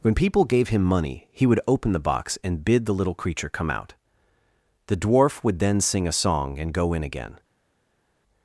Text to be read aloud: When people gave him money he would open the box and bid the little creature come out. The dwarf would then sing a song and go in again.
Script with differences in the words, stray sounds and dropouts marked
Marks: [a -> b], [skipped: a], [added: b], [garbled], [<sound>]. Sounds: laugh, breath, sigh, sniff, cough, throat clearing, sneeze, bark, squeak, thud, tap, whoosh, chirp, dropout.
When people gave him money he would open the box and bid the little creature come out. The dwarf would then sing a song and go in again.